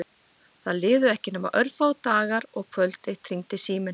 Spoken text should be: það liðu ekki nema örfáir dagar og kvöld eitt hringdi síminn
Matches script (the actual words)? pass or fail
pass